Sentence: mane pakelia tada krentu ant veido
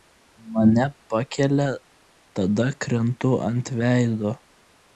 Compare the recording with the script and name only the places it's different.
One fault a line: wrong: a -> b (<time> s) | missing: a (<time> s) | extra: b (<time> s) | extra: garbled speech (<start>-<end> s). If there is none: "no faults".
no faults